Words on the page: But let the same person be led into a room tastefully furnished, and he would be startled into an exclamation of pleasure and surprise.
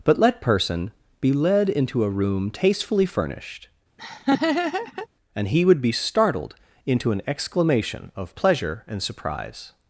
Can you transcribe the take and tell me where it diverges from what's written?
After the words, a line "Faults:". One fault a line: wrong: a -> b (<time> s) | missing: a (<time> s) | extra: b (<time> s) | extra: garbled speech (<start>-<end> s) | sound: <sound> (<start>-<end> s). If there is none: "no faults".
But let person be led into a room tastefully furnished, and he would be startled into an exclamation of pleasure and surprise.
Faults:
missing: the same (0.4 s)
sound: laugh (4.0-5.1 s)